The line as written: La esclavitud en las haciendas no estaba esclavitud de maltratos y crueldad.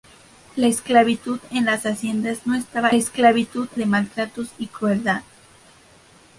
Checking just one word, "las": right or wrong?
right